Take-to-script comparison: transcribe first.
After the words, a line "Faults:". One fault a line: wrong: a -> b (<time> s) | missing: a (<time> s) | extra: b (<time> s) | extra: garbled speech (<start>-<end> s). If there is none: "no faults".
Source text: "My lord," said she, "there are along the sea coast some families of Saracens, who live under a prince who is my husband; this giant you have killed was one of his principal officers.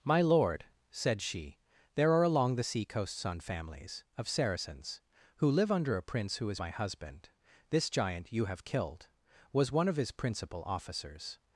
"My lord," said she, "there are along the sea coast sun families of Saracens, who live under a prince who is my husband; this giant you have killed was one of his principal officers.
Faults:
wrong: some -> sun (3.1 s)